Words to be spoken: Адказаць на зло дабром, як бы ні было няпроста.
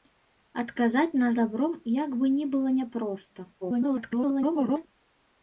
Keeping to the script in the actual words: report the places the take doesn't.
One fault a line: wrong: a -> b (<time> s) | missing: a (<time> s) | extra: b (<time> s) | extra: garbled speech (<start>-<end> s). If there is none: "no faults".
missing: зло (1.3 s)
extra: garbled speech (3.6-4.9 s)